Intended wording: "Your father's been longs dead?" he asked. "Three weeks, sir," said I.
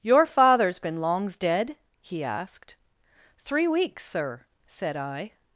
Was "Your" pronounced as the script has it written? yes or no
yes